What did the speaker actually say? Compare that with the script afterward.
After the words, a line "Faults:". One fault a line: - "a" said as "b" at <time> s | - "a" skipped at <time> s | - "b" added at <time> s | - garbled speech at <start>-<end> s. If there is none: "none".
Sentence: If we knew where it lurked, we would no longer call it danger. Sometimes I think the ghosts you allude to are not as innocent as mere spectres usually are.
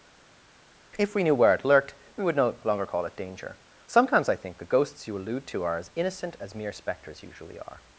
If we knew where it lurked, we would no longer call it danger. Sometimes I think the ghosts you allude to are as innocent as mere spectres usually are.
Faults:
- "not" skipped at 5.8 s